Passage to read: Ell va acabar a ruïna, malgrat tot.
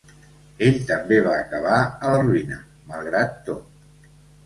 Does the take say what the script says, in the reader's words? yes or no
no